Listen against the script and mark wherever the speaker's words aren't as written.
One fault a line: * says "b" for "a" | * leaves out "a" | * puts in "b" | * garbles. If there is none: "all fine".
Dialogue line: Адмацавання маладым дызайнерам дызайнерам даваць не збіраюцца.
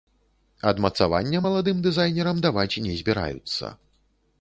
* leaves out "дызайнерам"